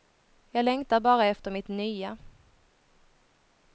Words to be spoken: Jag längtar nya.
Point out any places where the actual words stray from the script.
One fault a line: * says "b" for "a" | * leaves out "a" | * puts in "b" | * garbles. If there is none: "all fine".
* puts in "bara efter mitt"